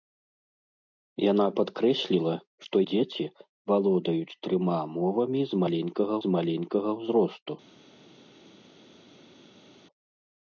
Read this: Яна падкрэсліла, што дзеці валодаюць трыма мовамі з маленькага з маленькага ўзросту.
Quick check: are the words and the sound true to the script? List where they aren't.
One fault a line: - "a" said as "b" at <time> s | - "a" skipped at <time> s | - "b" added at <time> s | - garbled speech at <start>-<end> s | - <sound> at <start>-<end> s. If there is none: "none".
none